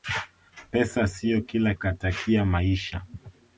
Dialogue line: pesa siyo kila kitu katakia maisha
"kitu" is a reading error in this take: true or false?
true